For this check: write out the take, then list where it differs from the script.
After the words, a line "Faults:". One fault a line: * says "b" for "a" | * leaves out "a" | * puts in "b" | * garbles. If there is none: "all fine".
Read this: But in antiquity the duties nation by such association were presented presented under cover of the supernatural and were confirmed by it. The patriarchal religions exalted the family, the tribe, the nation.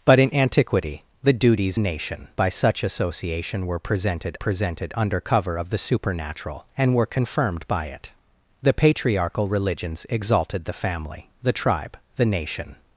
But in antiquity the duties nation by such association were presented presented under cover of the supernatural and were confirmed by it. The patriarchal religions exalted the family, the tribe, the nation.
Faults:
all fine